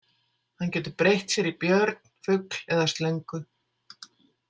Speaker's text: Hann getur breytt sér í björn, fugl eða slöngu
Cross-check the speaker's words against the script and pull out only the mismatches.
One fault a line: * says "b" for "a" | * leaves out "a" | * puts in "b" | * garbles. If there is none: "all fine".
all fine